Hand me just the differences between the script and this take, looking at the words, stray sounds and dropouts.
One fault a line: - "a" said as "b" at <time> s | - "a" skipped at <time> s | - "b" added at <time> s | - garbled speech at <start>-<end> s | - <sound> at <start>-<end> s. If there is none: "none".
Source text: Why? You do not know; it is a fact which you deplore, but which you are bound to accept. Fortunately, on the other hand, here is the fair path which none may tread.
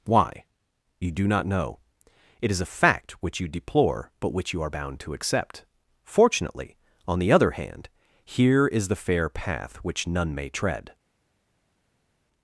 none